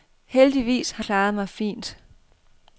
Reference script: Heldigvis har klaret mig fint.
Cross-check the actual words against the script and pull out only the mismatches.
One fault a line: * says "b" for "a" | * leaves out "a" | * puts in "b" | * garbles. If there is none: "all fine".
all fine